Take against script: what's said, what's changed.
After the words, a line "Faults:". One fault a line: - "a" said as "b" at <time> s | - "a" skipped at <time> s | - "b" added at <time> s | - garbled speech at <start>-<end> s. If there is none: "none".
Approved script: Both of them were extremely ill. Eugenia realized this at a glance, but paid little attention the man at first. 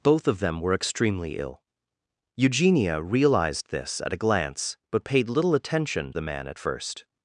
Both of them were extremely ill. Eugenia realized this at a glance, but paid little attention the man at first.
Faults:
none